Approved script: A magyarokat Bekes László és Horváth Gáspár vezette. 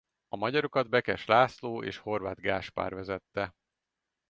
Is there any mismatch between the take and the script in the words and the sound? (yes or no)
no